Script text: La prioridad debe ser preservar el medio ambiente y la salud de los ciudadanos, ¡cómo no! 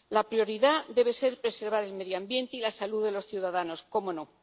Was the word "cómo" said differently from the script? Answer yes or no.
no